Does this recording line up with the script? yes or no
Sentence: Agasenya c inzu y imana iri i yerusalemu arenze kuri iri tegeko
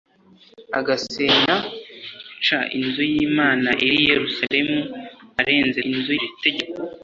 no